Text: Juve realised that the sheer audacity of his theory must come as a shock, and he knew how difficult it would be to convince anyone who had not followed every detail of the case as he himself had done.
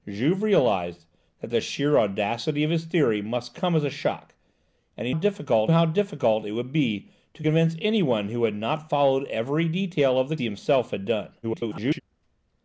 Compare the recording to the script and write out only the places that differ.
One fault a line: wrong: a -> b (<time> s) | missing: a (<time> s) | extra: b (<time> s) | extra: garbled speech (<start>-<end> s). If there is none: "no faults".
wrong: knew -> difficult (5.1 s)
missing: case as (10.4 s)
extra: garbled speech (11.4-12.0 s)